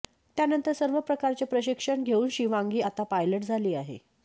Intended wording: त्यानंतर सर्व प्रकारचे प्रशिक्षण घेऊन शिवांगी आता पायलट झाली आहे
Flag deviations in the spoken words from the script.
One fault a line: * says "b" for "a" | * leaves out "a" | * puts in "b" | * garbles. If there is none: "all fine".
all fine